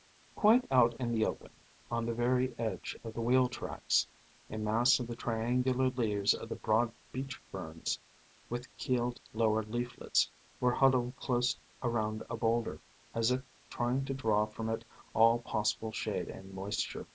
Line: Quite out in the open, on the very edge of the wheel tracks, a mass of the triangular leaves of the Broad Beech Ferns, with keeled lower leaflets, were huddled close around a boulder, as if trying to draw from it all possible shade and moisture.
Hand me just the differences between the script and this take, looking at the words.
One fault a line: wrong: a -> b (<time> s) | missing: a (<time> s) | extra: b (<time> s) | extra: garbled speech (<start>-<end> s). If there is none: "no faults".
no faults